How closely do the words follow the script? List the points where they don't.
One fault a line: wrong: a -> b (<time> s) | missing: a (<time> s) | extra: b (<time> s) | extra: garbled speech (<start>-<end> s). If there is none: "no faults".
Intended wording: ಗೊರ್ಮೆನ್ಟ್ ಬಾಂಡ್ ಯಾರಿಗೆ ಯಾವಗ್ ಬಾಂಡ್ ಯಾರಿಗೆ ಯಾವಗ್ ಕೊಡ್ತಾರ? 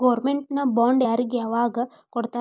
missing: ಬಾಂಡ್ ಯಾರಿಗೆ ಯಾವಗ್ (1.8 s)